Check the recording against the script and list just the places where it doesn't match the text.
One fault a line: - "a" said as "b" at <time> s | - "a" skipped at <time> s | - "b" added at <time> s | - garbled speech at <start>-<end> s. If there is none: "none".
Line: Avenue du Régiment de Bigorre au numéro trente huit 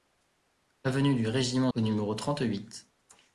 - "de Bigorre" skipped at 1.7 s